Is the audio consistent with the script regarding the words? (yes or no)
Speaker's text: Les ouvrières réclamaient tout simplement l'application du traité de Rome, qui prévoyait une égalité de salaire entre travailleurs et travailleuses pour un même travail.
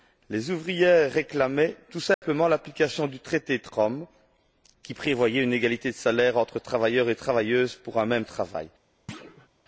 yes